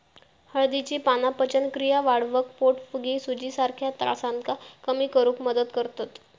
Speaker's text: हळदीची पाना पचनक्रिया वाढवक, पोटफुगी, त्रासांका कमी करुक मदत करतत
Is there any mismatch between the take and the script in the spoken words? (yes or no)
yes